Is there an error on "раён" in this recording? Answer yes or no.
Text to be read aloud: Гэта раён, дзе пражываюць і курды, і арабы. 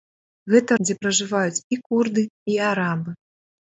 yes